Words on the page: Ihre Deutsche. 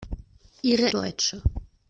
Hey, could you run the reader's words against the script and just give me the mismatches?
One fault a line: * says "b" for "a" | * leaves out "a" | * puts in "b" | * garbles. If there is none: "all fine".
all fine